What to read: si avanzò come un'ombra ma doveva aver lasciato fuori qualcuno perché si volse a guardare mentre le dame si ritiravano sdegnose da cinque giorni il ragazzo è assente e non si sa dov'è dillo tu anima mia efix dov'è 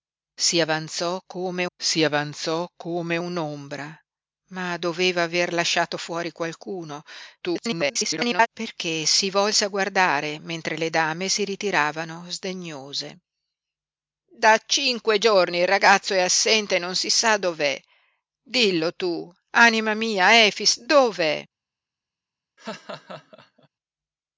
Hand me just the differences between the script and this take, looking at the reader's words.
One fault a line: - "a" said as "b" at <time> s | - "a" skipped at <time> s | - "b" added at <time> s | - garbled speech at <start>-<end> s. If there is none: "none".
- "si avanzò come" added at 1.8 s
- garbled speech at 7.4-8.5 s